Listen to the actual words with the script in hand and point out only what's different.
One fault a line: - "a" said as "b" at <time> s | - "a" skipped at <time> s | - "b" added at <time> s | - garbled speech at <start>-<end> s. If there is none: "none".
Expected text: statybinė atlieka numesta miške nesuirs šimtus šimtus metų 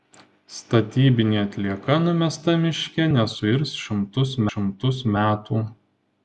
none